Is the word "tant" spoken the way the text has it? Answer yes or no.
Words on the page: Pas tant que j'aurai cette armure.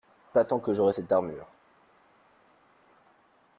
yes